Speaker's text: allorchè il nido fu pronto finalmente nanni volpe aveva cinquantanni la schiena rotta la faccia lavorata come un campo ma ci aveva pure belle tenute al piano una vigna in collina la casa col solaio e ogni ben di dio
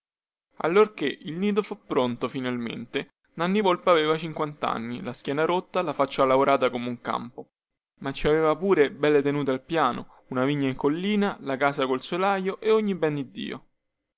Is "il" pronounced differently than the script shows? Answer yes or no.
no